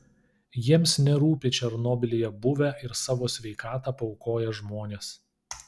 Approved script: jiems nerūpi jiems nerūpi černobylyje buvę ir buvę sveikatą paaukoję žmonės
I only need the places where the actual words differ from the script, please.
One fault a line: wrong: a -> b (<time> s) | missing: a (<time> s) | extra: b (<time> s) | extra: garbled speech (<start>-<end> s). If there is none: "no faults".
missing: jiems nerūpi (1.5 s)
wrong: buvę -> savo (3.0 s)